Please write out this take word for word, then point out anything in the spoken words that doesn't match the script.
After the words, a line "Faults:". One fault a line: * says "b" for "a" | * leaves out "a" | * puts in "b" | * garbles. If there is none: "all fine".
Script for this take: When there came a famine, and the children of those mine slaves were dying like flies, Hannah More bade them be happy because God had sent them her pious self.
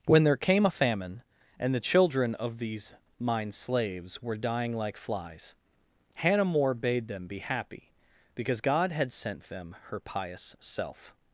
When there came a famine, and the children of these mine slaves were dying like flies, Hannah More bade them be happy because God had sent them her pious self.
Faults:
* says "these" for "those"